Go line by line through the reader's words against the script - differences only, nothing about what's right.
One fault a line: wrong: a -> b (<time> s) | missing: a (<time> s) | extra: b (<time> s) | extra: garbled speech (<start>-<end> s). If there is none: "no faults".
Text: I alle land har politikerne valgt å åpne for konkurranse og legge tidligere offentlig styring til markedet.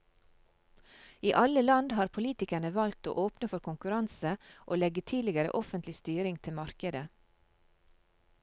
no faults